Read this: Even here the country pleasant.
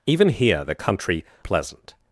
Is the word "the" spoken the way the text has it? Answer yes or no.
yes